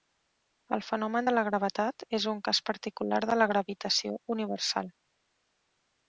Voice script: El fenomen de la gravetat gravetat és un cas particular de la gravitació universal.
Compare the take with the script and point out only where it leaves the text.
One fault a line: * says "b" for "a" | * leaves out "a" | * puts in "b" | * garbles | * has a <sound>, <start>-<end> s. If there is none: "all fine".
* leaves out "gravetat"